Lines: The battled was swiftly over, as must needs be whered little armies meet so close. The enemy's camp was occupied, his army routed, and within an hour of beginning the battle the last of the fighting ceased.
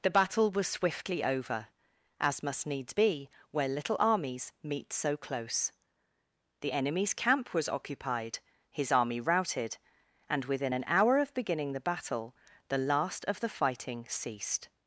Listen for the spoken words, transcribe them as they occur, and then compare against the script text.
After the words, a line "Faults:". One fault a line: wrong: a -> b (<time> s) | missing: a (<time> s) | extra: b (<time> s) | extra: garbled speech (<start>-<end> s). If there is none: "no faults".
The battle was swiftly over, as must needs be where little armies meet so close. The enemy's camp was occupied, his army routed, and within an hour of beginning the battle the last of the fighting ceased.
Faults:
wrong: battled -> battle (0.1 s)
wrong: whered -> where (3.5 s)